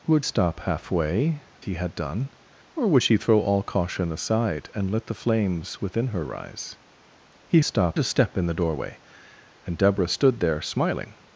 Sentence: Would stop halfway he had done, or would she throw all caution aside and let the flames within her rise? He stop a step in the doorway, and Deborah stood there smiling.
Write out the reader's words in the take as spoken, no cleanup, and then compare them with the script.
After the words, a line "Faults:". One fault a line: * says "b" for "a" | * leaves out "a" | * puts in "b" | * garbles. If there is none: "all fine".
Would stop halfway he had done, or would she throw all caution aside and let the flames within her rise? He stop a step in the doorway, and Deborah stood there smiling.
Faults:
all fine